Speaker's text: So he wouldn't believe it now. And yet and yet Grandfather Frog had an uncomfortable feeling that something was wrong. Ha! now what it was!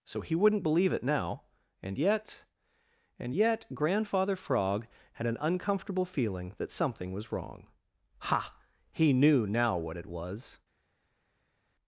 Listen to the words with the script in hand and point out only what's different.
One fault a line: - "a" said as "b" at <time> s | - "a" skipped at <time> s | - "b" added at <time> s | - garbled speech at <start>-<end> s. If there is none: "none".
- "he knew" added at 8.9 s